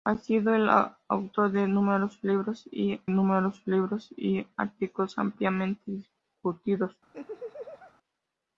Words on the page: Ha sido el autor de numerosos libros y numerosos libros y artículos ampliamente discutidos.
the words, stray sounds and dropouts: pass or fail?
fail